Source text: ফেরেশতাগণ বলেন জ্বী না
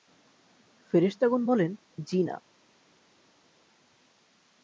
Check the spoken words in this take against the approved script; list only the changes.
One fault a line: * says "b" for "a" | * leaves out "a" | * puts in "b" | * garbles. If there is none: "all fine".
all fine